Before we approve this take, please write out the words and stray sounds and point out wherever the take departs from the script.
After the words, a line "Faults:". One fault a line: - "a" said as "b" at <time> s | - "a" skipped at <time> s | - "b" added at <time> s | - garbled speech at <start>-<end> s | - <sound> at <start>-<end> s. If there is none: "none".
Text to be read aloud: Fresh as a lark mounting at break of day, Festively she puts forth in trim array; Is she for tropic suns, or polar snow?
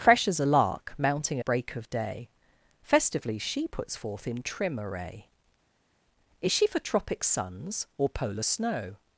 Fresh as a lark mounting break of day, Festively she puts forth in trim array; Is she for tropic suns, or polar snow?
Faults:
- "at" skipped at 1.4 s